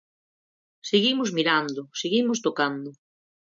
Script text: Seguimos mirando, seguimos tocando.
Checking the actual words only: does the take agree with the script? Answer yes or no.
yes